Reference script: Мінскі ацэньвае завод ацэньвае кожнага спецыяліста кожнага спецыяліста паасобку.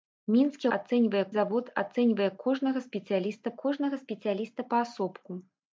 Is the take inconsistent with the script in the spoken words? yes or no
no